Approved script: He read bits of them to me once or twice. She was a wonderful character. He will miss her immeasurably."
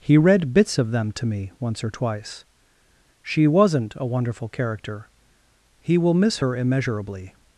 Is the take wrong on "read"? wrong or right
right